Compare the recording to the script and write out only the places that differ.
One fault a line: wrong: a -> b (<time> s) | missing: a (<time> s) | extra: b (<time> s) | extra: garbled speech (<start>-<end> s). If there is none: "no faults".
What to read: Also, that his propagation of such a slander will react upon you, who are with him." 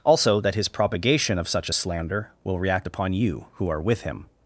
no faults